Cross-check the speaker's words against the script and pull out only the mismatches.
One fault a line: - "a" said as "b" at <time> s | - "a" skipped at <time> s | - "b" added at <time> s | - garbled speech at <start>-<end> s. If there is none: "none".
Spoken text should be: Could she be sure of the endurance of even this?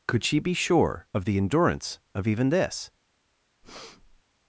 none